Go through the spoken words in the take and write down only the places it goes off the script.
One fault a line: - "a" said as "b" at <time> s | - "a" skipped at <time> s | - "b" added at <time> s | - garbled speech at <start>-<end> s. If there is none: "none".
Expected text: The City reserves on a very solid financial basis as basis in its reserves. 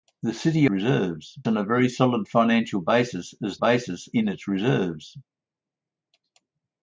none